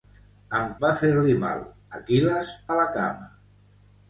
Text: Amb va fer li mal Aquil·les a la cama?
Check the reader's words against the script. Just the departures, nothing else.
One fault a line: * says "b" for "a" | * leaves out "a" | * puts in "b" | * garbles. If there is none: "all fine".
all fine